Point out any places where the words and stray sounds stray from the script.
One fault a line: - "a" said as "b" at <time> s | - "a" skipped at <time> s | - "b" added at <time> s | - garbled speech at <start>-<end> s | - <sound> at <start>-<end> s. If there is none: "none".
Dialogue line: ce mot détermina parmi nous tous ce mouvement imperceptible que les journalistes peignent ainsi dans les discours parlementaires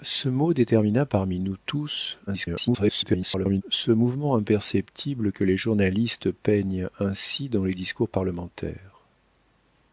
- garbled speech at 2.3-3.6 s